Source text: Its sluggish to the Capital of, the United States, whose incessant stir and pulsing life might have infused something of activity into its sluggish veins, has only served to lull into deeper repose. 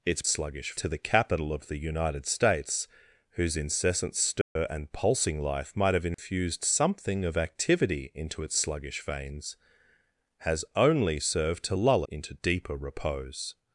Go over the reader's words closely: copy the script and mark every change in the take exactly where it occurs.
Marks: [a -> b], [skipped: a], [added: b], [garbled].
Its sluggish to the Capital of, the United States, whose incessant stir and pulsing life might have infused something of activity into its sluggish veins, has only served to lull into deeper repose.